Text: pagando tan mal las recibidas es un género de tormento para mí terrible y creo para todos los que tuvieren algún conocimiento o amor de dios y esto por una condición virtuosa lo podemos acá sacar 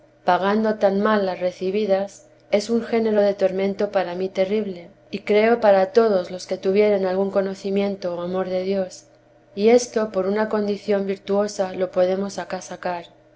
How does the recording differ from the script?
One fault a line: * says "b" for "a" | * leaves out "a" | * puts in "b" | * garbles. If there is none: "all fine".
all fine